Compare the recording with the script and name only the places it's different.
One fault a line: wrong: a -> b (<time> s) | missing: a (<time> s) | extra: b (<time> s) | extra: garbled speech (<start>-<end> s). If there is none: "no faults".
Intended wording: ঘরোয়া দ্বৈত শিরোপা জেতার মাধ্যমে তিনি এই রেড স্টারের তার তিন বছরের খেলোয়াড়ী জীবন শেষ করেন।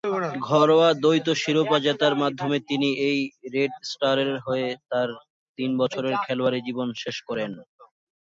extra: হয়ে (4.5 s)